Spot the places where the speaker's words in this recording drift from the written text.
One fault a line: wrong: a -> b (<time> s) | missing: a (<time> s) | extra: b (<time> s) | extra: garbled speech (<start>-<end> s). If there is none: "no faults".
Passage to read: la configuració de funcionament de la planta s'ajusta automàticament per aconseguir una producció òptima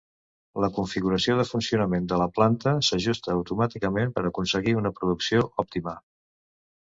no faults